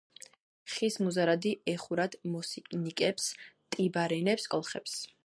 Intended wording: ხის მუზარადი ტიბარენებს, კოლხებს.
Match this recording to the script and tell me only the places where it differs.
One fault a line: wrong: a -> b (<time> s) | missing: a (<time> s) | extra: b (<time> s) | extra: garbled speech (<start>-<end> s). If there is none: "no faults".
extra: ეხურათ მოსინიკებს (1.7 s)